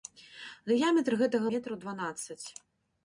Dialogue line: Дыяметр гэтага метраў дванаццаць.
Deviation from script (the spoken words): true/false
false